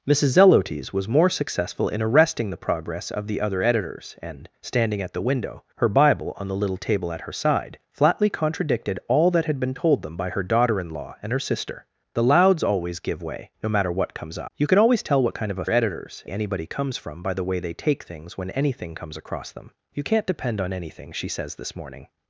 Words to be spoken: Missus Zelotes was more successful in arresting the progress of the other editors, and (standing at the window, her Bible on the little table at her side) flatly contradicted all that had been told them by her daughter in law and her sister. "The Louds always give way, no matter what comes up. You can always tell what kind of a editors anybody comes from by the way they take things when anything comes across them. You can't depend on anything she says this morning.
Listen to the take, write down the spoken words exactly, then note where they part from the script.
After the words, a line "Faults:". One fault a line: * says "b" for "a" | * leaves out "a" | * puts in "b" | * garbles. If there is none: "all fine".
Missus Zelotes was more successful in arresting the progress of the other editors, and (standing at the window, her Bible on the little table at her side) flatly contradicted all that had been told them by her daughter in law and her sister. "The Louds always give way, no matter what comes up. You can always tell what kind of a editors anybody comes from by the way they take things when anything comes across them. You can't depend on anything she says this morning.
Faults:
all fine